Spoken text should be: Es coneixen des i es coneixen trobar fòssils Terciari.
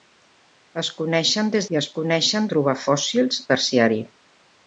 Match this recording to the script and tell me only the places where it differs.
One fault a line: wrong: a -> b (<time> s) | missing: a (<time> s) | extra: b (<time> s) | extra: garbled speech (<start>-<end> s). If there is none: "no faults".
no faults